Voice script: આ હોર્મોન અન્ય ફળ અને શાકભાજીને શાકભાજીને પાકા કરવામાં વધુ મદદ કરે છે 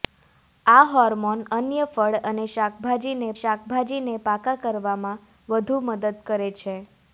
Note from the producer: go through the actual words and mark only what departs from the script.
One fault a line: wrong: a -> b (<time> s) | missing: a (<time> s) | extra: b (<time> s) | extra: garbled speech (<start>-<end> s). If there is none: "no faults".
no faults